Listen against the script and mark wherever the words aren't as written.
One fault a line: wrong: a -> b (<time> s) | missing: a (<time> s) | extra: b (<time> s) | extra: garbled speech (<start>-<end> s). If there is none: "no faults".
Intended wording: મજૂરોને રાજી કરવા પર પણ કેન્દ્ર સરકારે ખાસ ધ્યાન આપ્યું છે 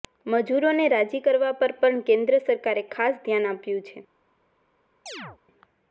no faults